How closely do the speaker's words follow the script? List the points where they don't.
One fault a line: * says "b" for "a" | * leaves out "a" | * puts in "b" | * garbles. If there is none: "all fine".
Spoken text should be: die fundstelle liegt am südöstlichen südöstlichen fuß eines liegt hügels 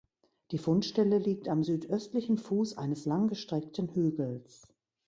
* leaves out "südöstlichen"
* says "langgestreckten" for "liegt"